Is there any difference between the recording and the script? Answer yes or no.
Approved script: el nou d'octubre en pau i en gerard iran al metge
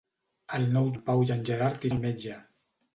yes